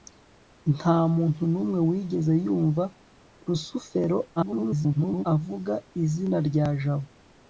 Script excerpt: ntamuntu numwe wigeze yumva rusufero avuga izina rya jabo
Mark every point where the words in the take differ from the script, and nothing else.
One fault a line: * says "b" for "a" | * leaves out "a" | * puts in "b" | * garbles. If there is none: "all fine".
* garbles